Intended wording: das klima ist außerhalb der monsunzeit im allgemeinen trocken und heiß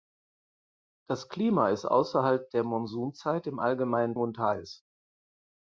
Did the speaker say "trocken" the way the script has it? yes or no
no